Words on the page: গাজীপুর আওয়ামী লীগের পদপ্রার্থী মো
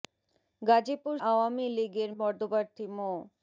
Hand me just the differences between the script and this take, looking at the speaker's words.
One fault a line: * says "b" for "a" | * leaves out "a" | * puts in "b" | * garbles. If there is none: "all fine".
all fine